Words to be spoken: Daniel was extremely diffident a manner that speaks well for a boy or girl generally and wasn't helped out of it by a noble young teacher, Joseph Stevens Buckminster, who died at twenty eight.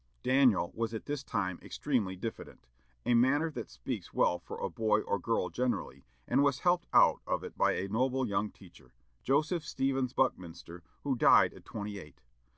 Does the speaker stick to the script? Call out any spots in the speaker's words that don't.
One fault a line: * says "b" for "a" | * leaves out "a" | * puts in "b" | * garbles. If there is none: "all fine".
* puts in "at this time"
* says "was" for "wasn't"